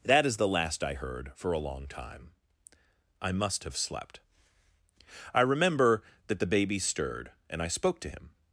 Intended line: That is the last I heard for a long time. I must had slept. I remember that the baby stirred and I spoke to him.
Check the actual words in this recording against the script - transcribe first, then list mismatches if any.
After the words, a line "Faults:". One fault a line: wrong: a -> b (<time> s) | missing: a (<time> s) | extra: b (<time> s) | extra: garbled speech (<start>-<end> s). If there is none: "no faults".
That is the last I heard for a long time. I must have slept. I remember that the baby stirred and I spoke to him.
Faults:
wrong: had -> have (3.6 s)